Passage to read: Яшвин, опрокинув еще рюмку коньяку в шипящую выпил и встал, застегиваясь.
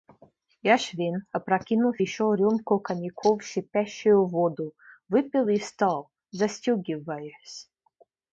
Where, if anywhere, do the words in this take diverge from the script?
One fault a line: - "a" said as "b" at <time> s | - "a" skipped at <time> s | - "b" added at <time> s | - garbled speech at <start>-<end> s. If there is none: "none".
- "воду" added at 4.2 s